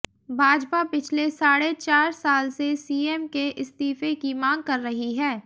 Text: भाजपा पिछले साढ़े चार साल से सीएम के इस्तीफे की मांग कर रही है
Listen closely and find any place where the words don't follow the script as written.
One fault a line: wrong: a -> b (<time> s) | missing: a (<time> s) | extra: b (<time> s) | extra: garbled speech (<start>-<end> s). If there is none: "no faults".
no faults